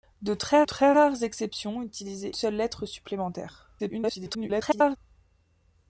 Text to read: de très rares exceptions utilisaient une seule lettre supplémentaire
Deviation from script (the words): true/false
true